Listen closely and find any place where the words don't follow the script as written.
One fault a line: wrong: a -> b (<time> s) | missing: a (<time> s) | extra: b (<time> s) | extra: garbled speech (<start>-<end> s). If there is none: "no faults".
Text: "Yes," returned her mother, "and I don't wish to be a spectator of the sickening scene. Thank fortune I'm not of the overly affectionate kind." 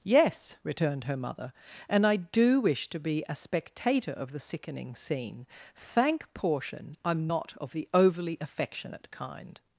wrong: don't -> do (2.1 s)
wrong: fortune -> portion (6.3 s)